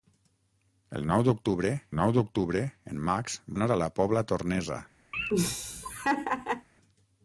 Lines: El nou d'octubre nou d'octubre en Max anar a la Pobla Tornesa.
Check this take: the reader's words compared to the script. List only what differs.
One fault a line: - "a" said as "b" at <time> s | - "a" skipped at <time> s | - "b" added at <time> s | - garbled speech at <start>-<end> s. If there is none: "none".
none